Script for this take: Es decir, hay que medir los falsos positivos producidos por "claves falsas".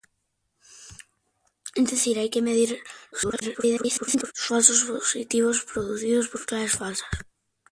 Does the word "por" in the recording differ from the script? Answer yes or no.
no